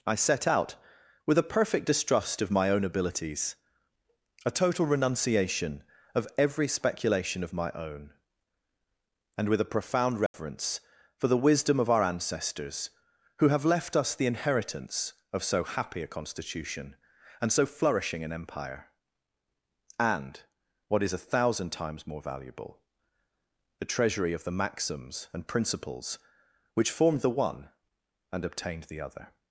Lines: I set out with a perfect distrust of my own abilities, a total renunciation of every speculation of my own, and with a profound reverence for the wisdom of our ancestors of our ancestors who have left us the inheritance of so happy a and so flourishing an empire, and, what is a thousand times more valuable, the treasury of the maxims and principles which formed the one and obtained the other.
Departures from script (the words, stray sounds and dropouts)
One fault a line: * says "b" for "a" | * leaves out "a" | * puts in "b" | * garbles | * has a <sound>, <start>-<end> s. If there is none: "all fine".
* has a dropout, 10.3-10.3 s
* leaves out "of our ancestors"
* puts in "constitution"